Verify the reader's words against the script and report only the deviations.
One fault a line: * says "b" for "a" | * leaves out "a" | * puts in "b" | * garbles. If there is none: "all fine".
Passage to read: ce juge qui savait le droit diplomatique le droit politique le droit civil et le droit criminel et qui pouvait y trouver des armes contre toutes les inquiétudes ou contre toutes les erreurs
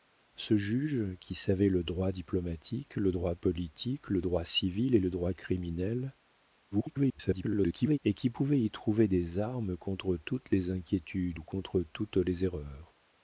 * garbles